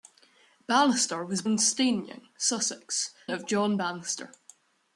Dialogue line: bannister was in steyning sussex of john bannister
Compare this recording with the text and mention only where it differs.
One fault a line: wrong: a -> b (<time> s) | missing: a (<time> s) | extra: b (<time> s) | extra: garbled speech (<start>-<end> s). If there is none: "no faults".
no faults